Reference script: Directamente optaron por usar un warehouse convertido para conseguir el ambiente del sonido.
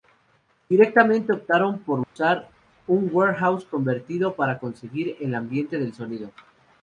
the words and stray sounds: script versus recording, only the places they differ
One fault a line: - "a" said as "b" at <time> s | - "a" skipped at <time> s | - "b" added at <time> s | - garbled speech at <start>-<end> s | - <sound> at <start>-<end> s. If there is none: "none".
- dropout at 2.0-2.2 s